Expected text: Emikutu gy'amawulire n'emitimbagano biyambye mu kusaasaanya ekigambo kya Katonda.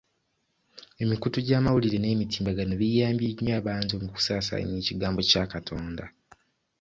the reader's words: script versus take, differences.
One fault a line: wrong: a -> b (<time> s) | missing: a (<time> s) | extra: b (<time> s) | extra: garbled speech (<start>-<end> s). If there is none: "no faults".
extra: nnyo abantu (3.3 s)